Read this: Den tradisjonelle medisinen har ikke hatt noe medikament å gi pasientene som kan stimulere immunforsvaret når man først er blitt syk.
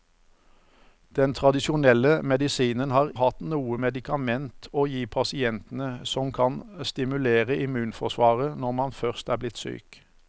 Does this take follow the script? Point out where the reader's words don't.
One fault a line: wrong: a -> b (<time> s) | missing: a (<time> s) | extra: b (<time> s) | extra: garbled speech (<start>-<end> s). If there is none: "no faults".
missing: ikke (3.1 s)